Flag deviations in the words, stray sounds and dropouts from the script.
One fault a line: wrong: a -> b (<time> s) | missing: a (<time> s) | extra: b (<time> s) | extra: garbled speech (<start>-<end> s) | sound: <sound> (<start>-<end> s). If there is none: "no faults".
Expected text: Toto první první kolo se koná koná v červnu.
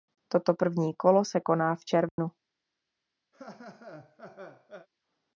missing: první (0.9 s)
missing: koná (1.7 s)
sound: dropout (2.1-2.2 s)
sound: laugh (3.3-4.9 s)